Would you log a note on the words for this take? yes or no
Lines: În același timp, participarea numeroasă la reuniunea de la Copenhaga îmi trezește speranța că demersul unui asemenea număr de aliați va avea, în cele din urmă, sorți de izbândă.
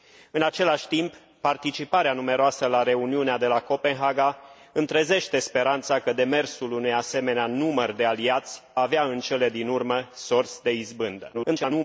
yes